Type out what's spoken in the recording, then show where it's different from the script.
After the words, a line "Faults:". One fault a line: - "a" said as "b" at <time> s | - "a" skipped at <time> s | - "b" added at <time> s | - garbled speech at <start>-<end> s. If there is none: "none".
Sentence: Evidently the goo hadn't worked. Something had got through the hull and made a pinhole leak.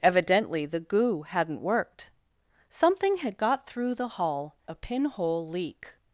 Evidently the goo hadn't worked. Something had got through the hull a pinhole leak.
Faults:
- "and made" skipped at 4.5 s